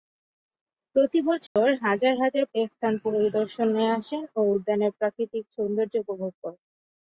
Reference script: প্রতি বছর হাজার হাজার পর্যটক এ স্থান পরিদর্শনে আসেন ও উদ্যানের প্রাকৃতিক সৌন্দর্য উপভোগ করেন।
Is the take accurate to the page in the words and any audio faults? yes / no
no